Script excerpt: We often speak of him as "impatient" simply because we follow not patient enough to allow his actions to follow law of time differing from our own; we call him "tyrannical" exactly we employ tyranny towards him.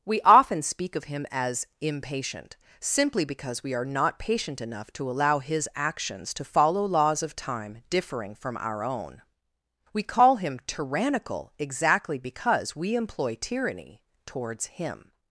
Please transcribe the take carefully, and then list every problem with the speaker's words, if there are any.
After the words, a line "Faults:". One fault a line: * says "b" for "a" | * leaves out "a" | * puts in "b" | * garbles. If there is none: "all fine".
We often speak of him as "impatient" simply because we are not patient enough to allow his actions to follow laws of time differing from our own; we call him "tyrannical" exactly because we employ tyranny towards him.
Faults:
* says "are" for "follow"
* says "laws" for "law"
* puts in "because"